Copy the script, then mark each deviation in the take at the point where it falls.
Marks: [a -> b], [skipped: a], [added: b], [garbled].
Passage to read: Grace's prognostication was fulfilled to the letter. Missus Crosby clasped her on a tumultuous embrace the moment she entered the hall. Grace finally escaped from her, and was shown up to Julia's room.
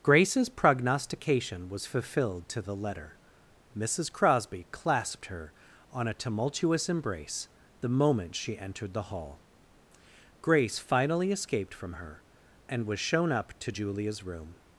Grace's prognostication was fulfilled to the letter. Missus Crosby clasped her on a tumultuous embrace the moment she entered the hall. Grace finally escaped from her, and was shown up to Julia's room.